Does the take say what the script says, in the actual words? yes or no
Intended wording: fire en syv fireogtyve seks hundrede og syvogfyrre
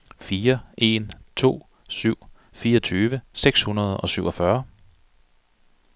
no